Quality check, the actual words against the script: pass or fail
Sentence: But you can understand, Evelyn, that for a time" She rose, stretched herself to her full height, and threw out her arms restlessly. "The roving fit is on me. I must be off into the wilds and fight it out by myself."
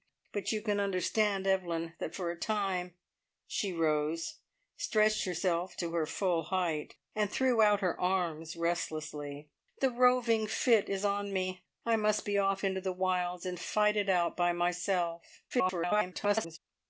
fail